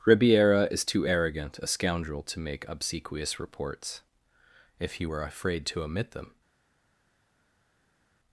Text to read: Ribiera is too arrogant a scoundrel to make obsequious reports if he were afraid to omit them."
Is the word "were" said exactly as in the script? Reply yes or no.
yes